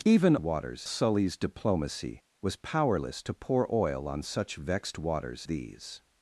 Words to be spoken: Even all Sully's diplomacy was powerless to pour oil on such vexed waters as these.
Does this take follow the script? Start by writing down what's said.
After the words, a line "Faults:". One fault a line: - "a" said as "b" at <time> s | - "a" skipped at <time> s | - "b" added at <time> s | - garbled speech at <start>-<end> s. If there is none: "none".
Even waters Sully's diplomacy was powerless to pour oil on such vexed waters these.
Faults:
- "all" said as "waters" at 0.4 s
- "as" skipped at 5.5 s